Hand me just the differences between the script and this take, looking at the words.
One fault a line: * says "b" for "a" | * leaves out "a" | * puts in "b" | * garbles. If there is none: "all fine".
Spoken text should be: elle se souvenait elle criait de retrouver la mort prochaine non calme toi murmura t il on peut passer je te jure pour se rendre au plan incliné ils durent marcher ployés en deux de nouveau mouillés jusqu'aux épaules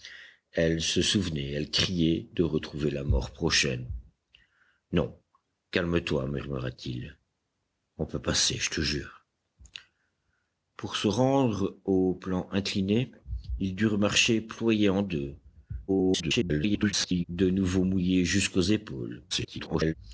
* garbles
* garbles